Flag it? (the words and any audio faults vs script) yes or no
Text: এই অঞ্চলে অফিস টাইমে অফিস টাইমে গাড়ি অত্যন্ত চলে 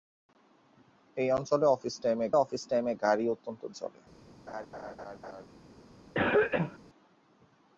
yes